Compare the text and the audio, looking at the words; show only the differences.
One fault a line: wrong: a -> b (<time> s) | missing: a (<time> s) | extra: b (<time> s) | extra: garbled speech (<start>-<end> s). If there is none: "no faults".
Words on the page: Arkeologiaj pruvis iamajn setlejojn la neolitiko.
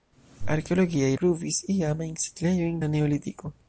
no faults